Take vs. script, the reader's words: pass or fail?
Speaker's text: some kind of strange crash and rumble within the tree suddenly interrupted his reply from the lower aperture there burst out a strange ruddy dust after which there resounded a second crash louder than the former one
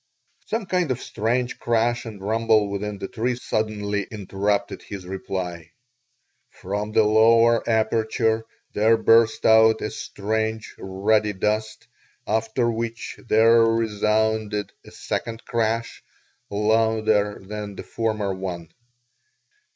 pass